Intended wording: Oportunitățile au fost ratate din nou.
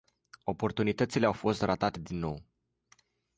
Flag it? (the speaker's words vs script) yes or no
no